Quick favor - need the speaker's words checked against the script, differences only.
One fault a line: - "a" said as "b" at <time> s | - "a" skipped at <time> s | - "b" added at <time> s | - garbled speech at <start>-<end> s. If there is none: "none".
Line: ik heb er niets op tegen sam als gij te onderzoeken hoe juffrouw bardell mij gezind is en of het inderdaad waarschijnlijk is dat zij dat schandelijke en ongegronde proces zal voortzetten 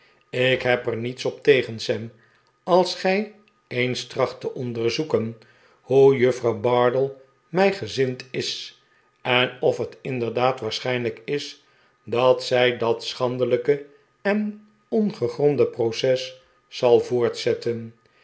- "eens tracht" added at 3.7 s